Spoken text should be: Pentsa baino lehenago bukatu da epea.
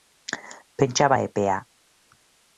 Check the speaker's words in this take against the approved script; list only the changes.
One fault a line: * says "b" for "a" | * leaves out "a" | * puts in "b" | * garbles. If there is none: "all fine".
* leaves out "baino lehenago bukatu"